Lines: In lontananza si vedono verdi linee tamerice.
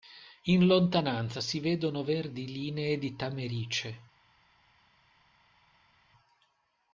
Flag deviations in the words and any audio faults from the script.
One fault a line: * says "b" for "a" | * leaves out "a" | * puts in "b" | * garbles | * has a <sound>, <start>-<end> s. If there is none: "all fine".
* puts in "di"